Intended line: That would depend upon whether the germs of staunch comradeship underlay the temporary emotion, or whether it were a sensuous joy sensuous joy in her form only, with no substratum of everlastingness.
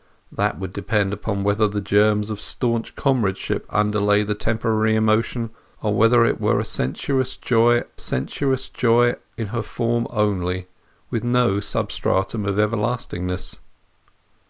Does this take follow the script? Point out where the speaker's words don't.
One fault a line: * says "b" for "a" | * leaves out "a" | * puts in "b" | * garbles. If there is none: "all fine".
all fine